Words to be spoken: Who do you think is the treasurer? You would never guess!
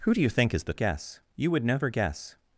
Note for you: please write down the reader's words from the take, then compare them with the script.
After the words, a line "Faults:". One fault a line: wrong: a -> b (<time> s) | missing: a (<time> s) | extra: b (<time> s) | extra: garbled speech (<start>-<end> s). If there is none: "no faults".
Who do you think is the guess? You would never guess!
Faults:
wrong: treasurer -> guess (0.7 s)